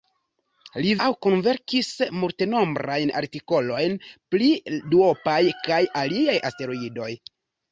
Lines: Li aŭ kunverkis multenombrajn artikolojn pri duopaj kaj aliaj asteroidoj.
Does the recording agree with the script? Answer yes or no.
yes